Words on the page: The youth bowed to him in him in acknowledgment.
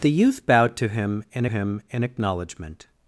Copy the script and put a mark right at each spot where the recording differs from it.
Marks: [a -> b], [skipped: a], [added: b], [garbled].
The youth bowed to him in him in acknowledgment.